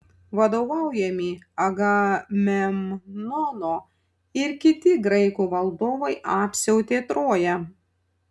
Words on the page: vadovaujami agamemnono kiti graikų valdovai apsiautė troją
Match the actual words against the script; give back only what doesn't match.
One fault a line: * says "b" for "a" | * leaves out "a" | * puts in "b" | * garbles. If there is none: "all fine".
* puts in "ir"